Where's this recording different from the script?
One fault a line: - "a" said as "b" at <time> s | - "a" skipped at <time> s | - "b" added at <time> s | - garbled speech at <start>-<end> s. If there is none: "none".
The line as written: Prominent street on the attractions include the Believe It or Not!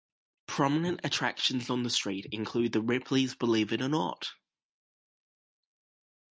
- "street" said as "attractions" at 1.0 s
- "attractions" said as "street" at 1.9 s
- "Ripley's" added at 2.8 s